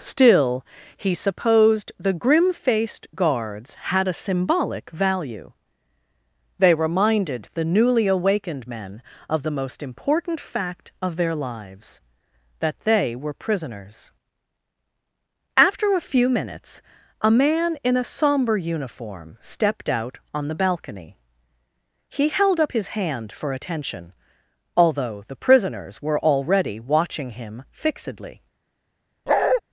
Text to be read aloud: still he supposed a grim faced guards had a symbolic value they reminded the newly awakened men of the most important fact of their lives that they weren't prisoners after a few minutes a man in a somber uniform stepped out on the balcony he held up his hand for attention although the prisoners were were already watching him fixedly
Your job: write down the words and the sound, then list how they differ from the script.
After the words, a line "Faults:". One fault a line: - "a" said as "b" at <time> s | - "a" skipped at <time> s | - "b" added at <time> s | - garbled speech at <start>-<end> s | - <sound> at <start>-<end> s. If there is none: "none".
still he supposed the grim faced guards had a symbolic value they reminded the newly awakened men of the most important fact of their lives that they were prisoners after a few minutes a man in a somber uniform stepped out on the balcony he held up his hand for attention although the prisoners were already watching him fixedly
Faults:
- "a" said as "the" at 2.0 s
- "weren't" said as "were" at 13.1 s
- "were" skipped at 26.2 s
- bark at 29.3-29.6 s